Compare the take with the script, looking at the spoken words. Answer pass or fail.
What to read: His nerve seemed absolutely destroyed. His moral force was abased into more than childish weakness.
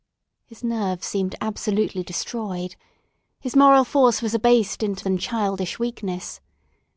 fail